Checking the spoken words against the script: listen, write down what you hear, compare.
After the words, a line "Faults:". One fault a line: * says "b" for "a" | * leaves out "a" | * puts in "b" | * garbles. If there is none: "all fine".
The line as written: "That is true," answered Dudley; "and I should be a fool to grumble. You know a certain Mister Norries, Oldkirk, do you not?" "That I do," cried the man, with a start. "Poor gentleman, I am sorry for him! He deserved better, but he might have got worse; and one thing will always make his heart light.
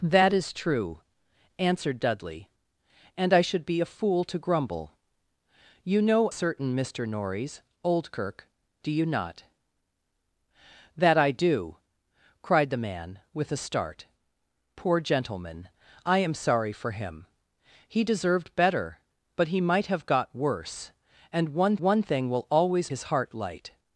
"That is true," answered Dudley; "and I should be a fool to grumble. You know certain Mister Norries, Oldkirk, do you not?" "That I do," cried the man, with a start. "Poor gentleman, I am sorry for him! He deserved better, but he might have got worse; and one one thing will always his heart light.
Faults:
* leaves out "a"
* puts in "one"
* leaves out "make"